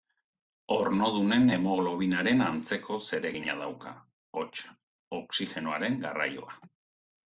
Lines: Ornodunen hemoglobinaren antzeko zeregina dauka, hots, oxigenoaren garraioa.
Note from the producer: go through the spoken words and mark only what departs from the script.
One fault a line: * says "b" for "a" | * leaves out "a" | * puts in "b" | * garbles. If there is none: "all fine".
all fine